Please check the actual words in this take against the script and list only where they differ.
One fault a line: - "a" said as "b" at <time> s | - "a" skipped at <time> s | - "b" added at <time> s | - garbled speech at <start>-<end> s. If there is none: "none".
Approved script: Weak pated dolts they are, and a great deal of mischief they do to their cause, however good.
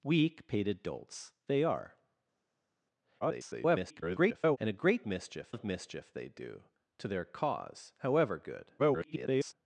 - garbled speech at 3.2-4.6 s
- "deal" said as "mischief" at 5.1 s
- garbled speech at 8.8-9.5 s